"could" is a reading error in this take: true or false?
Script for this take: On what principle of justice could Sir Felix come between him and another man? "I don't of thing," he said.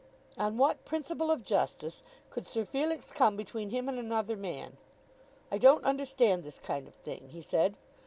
false